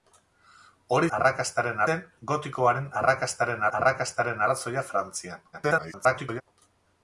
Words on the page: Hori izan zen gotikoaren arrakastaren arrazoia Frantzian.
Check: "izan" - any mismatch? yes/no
yes